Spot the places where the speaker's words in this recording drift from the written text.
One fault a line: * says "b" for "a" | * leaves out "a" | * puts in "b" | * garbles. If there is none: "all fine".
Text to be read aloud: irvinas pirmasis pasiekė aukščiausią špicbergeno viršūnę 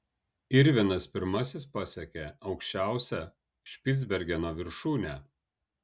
all fine